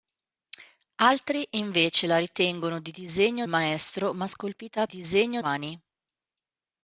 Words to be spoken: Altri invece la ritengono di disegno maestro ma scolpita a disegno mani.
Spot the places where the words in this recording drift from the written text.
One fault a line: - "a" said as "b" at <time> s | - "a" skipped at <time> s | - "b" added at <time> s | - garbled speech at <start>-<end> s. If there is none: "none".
none